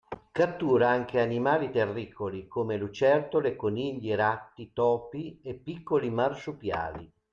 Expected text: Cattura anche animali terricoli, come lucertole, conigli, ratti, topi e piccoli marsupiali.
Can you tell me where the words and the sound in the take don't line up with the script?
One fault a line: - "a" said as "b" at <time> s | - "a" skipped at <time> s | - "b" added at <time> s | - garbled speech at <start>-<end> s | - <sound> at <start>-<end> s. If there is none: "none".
none